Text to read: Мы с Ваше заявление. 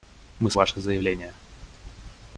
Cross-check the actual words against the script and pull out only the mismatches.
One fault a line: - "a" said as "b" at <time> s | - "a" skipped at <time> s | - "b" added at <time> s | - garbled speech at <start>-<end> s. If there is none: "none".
none